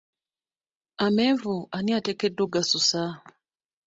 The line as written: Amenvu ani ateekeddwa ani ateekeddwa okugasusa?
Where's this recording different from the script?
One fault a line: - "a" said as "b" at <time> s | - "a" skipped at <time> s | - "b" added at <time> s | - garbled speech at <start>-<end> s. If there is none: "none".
- "ani ateekeddwa" skipped at 2.4 s